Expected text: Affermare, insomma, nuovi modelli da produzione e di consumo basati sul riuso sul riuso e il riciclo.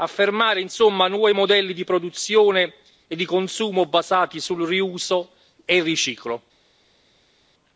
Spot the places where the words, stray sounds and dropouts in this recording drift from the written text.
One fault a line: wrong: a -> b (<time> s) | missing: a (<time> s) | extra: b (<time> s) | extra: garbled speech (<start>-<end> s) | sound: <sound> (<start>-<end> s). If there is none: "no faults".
wrong: da -> di (1.7 s)
missing: sul riuso (5.3 s)